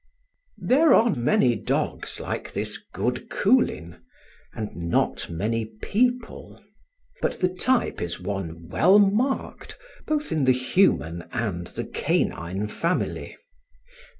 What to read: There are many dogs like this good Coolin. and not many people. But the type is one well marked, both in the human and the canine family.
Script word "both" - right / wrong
right